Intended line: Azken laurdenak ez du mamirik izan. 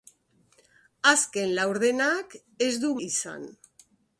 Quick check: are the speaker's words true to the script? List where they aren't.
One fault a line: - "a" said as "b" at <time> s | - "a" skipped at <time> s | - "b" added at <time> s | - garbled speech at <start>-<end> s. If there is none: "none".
- "mamirik" skipped at 2.9 s